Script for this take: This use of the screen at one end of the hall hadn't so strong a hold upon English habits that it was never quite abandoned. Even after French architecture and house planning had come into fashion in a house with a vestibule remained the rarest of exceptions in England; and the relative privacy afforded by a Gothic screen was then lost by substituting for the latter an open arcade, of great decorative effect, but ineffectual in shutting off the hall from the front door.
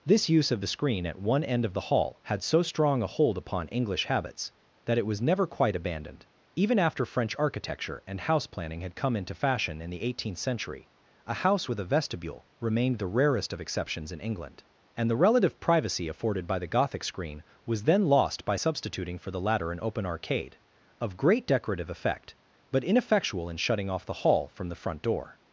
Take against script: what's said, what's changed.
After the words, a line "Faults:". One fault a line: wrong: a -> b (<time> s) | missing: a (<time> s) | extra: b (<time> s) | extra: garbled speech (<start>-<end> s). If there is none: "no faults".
This use of the screen at one end of the hall had so strong a hold upon English habits that it was never quite abandoned. Even after French architecture and house planning had come into fashion in the eighteenth century, a house with a vestibule remained the rarest of exceptions in England; and the relative privacy afforded by the Gothic screen was then lost by substituting for the latter an open arcade, of great decorative effect, but ineffectual in shutting off the hall from the front door.
Faults:
wrong: hadn't -> had (2.2 s)
extra: the eighteenth century (9.9 s)
wrong: a -> the (16.6 s)